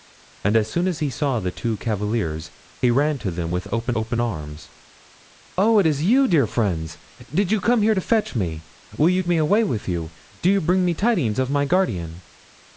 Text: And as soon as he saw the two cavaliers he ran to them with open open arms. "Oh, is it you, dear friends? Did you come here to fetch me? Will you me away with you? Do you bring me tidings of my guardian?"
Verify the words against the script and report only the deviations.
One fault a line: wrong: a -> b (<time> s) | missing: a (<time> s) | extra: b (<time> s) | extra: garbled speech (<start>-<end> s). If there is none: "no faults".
no faults